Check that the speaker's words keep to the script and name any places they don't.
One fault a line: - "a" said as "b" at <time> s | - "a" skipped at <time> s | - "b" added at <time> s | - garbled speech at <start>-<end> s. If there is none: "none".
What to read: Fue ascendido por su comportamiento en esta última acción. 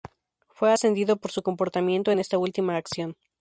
none